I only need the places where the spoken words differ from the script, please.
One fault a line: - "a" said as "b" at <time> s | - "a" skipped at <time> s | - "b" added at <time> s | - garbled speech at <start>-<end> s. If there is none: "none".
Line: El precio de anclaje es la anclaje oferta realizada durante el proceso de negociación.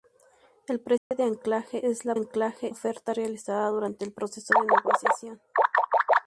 none